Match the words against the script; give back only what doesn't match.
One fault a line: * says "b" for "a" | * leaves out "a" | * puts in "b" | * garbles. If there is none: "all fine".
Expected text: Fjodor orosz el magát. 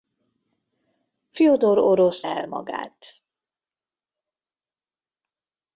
all fine